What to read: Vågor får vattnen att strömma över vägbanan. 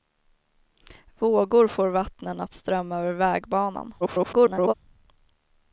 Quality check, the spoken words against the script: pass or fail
fail